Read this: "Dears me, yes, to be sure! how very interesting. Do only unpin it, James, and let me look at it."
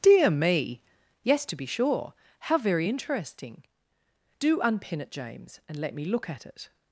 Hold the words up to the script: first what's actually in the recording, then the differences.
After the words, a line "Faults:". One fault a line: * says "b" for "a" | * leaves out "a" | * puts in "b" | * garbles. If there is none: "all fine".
"Dear me, yes, to be sure! how very interesting. Do unpin it, James, and let me look at it."
Faults:
* says "Dear" for "Dears"
* leaves out "only"